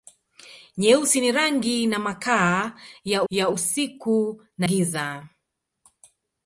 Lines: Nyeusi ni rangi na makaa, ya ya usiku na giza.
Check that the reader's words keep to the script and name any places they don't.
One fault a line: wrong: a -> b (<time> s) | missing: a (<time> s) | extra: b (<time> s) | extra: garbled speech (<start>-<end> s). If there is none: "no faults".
no faults